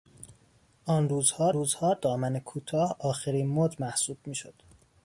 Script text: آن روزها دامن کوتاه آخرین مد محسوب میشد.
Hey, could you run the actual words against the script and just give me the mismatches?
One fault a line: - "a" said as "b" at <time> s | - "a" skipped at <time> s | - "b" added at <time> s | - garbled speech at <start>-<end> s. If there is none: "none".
- "روزها" added at 1.5 s